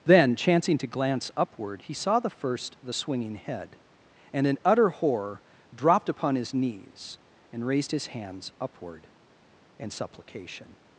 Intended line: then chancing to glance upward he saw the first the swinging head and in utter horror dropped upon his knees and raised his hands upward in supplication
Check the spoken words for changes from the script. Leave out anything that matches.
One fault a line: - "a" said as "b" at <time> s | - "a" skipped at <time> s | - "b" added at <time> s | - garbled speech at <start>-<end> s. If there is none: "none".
none